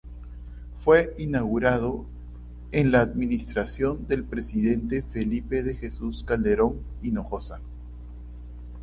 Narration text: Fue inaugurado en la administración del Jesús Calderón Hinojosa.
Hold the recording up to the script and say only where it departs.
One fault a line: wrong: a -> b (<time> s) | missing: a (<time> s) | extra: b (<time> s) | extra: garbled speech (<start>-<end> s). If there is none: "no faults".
extra: presidente Felipe de (4.2 s)